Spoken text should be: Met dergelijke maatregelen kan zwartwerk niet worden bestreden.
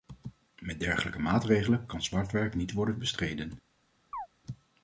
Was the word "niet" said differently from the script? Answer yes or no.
no